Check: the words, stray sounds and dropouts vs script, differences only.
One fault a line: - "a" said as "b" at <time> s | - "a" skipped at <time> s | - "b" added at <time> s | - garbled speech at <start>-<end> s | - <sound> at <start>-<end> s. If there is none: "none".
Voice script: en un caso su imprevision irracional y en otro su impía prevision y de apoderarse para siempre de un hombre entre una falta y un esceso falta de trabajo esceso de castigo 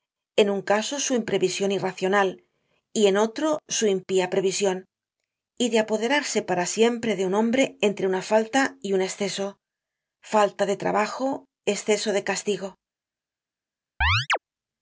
- chirp at 14.0-14.4 s